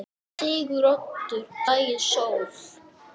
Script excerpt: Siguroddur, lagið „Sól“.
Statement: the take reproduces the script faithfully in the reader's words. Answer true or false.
true